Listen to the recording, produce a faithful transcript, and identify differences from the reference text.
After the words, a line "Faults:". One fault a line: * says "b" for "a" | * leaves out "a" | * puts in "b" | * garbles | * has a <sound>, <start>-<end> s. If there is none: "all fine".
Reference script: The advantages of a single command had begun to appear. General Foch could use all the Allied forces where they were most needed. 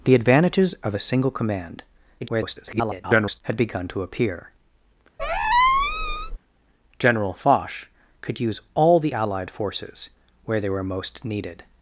The advantages of a single command [garbled] had begun to appear. General Foch could use all the Allied forces where they were most needed.
Faults:
* garbles
* has a squeak, 5.2-6.4 s